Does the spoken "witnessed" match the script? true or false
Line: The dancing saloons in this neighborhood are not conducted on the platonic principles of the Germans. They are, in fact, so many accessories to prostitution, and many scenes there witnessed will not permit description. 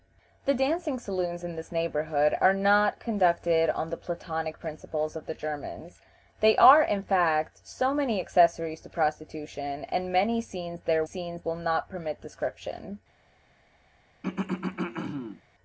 false